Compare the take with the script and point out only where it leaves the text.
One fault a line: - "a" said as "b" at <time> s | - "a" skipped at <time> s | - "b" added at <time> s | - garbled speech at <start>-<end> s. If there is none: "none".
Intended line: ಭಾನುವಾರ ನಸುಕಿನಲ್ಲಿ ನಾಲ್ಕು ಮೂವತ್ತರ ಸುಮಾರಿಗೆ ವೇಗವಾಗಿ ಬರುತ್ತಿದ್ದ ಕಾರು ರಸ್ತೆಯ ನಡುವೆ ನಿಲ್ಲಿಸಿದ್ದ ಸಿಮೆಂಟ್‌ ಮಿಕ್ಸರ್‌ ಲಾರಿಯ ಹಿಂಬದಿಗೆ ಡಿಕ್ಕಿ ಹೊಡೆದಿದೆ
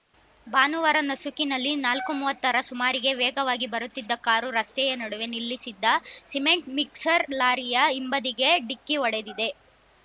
none